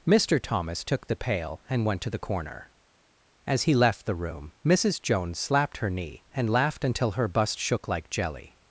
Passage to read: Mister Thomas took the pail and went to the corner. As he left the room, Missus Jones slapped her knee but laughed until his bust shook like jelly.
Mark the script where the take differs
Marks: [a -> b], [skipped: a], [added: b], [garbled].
Mister Thomas took the pail and went to the corner. As he left the room, Missus Jones slapped her knee [but -> and] laughed until [his -> her] bust shook like jelly.